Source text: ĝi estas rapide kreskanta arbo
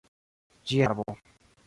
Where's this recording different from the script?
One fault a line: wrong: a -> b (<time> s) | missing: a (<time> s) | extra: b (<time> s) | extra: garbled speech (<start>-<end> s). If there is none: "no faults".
missing: estas rapide kreskanta (0.8 s)